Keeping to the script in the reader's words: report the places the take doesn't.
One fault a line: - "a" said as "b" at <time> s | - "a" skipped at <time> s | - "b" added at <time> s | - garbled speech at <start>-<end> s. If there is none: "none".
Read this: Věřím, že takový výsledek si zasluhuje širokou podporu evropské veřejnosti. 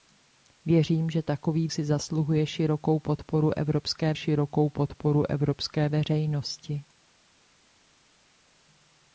- "výsledek" skipped at 1.7 s
- "širokou podporu evropské" added at 4.1 s